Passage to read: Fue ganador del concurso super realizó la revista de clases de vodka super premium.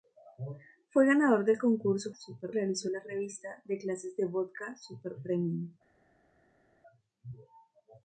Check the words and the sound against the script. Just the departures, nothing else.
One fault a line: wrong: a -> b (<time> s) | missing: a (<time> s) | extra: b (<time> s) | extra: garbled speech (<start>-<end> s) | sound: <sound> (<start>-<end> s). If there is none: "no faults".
no faults